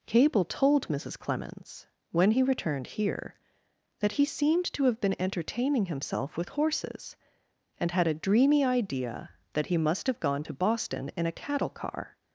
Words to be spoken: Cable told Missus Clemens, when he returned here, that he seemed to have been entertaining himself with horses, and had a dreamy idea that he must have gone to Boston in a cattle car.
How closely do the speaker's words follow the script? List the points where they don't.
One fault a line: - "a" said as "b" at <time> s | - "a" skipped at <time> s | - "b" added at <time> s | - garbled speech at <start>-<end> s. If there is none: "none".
none